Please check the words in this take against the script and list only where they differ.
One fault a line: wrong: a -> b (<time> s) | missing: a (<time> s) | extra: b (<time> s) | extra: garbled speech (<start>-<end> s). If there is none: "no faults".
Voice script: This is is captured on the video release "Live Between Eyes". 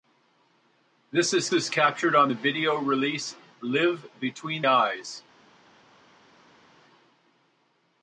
no faults